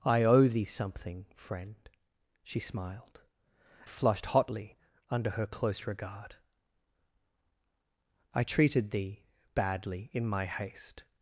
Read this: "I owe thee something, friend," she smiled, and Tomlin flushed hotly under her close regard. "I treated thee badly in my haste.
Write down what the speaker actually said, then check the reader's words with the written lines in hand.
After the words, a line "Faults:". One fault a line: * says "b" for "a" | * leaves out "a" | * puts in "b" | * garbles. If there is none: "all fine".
"I owe thee something, friend," she smiled, flushed hotly under her close regard. "I treated thee badly in my haste.
Faults:
* leaves out "and Tomlin"